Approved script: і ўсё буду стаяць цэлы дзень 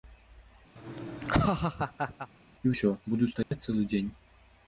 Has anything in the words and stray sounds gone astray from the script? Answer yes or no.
yes